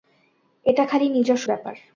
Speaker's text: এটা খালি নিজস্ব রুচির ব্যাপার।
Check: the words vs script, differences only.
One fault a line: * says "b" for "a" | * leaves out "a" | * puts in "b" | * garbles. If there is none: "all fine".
* leaves out "রুচির"